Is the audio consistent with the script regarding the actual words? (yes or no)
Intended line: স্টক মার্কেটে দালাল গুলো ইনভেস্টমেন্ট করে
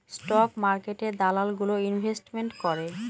yes